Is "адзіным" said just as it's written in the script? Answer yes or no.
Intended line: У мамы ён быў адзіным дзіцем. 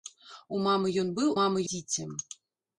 no